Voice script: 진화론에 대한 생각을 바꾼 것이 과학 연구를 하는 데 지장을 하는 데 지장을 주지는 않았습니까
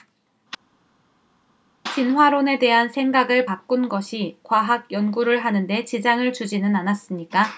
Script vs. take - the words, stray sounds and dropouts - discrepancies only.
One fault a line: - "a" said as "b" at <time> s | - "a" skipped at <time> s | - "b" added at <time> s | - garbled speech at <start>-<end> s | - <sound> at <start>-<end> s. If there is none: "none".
- "하는 데 지장을" skipped at 6.3 s